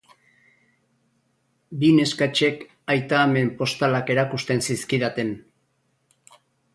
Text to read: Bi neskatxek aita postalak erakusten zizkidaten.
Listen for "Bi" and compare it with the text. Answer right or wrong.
right